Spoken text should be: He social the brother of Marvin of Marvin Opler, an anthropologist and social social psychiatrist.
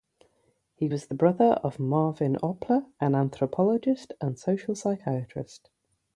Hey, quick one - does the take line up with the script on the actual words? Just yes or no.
no